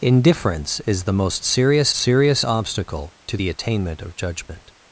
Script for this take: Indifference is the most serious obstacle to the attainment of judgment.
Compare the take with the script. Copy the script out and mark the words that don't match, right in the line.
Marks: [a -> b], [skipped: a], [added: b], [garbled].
Indifference is the most serious [added: serious] obstacle to the attainment of judgment.